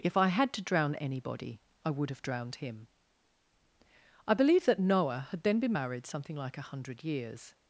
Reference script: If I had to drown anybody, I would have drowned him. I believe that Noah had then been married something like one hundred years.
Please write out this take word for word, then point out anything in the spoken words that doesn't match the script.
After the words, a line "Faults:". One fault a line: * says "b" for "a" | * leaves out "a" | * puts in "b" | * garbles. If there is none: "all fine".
If I had to drown anybody, I would have drowned him. I believe that Noah had then been married something like a hundred years.
Faults:
* says "a" for "one"